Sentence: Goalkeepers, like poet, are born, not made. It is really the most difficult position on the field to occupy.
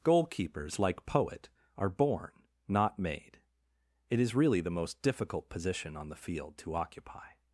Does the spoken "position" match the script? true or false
true